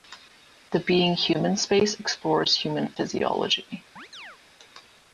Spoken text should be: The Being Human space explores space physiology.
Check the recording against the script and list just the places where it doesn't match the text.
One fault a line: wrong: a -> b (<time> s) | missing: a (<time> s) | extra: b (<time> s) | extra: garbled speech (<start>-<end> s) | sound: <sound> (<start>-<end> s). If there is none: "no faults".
wrong: space -> human (2.5 s)
sound: chirp (4.0-4.4 s)